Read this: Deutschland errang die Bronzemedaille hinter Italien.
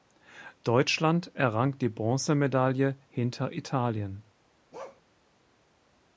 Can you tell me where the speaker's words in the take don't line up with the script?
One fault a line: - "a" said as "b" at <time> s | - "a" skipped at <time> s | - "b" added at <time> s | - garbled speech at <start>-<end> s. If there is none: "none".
none